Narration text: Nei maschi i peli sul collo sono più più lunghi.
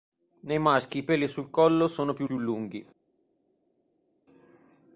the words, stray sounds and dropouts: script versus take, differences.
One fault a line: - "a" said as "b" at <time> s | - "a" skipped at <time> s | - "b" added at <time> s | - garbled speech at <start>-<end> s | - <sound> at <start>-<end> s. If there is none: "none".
none